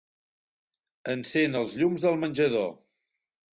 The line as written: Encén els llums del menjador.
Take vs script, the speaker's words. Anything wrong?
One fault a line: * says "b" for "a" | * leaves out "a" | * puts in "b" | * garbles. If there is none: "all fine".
all fine